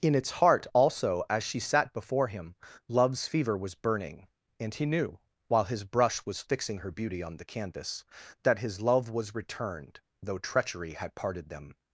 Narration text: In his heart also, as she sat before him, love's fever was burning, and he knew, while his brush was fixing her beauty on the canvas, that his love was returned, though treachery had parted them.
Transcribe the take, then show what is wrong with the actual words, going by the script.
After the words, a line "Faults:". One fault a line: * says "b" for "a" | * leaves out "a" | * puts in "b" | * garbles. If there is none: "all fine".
In its heart also, as she sat before him, love's fever was burning, and he knew, while his brush was fixing her beauty on the canvas, that his love was returned, though treachery had parted them.
Faults:
* says "its" for "his"